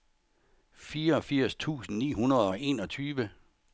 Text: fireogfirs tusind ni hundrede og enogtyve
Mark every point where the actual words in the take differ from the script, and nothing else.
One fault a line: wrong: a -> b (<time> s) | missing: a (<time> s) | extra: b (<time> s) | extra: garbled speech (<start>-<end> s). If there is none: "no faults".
no faults